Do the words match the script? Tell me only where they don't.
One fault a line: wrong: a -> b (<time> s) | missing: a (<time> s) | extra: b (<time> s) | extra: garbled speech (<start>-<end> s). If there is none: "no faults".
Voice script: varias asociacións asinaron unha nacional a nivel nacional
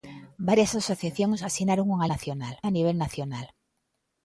no faults